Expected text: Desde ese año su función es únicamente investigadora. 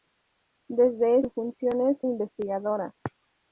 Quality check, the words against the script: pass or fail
fail